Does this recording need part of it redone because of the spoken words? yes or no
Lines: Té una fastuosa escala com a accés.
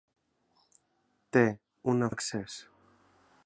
yes